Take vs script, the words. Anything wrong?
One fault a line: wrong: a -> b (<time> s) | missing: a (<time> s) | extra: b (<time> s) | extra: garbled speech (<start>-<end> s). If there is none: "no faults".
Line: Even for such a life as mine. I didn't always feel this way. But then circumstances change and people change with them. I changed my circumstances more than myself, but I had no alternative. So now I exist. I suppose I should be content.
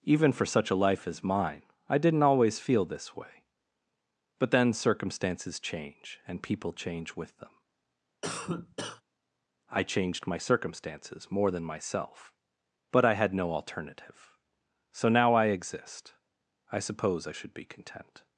no faults